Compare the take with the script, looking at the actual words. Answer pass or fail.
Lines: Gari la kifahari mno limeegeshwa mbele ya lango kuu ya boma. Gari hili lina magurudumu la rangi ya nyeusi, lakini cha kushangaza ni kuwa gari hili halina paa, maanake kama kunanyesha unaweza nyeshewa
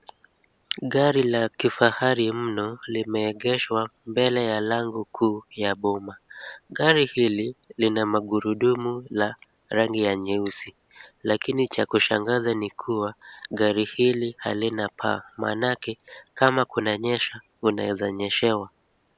pass